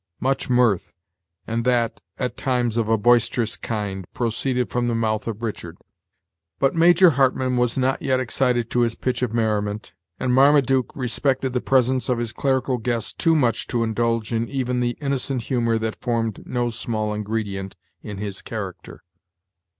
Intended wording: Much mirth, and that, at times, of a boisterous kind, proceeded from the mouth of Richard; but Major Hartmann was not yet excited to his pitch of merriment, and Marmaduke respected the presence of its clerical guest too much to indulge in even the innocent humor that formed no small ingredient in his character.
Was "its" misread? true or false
true